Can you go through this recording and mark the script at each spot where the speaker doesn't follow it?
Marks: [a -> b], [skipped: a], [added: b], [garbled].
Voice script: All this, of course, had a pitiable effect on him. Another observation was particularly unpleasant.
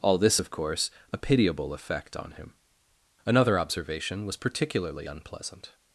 All this, of course, [skipped: had] a pitiable effect on him. Another observation was particularly unpleasant.